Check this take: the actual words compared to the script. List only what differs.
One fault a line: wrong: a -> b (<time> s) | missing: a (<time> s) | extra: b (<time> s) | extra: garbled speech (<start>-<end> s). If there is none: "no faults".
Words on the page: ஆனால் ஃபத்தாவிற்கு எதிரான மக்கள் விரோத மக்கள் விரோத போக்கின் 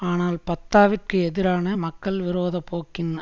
missing: மக்கள் விரோத (2.6 s)